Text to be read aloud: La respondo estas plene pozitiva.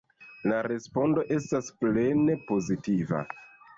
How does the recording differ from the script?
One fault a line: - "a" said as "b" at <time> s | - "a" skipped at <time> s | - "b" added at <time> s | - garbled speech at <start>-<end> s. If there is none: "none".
none